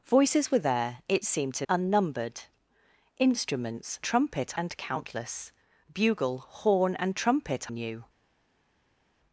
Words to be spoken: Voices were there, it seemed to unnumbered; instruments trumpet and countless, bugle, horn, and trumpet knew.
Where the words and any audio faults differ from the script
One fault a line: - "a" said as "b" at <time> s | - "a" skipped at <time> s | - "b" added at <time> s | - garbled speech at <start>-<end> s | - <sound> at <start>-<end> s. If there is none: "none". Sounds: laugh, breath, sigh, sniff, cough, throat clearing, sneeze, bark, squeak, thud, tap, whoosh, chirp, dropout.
none